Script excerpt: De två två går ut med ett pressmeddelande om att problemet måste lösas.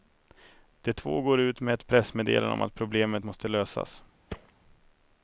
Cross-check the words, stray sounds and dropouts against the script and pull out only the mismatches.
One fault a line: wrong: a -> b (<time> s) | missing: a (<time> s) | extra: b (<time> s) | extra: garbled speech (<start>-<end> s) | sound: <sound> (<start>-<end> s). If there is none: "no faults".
missing: två (1.2 s)
sound: thud (4.3-4.5 s)